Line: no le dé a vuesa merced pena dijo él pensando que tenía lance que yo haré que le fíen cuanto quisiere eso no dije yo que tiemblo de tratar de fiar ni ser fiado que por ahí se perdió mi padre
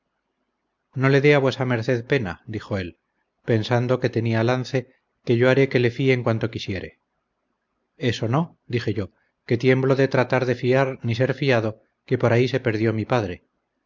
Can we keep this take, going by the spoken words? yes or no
yes